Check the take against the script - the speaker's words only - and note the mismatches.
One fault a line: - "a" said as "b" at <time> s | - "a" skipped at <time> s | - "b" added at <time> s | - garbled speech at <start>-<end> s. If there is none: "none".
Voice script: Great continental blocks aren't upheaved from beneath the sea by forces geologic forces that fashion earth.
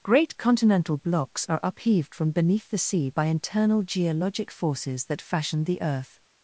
- "aren't" said as "are" at 1.5 s
- "forces" said as "internal" at 3.2 s
- "the" added at 5.6 s